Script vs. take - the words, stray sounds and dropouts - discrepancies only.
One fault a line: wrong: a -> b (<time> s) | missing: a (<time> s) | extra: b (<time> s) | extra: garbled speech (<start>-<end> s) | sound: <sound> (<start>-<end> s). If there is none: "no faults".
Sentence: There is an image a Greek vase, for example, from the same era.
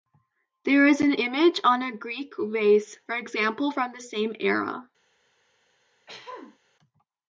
extra: on (1.7 s)
sound: throat clearing (6.1-6.6 s)